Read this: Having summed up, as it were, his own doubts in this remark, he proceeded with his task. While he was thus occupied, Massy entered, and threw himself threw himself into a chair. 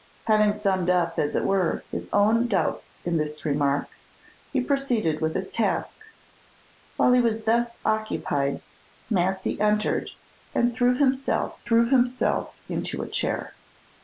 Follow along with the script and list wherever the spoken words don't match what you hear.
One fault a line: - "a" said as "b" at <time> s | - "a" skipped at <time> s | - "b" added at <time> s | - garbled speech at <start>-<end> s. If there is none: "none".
none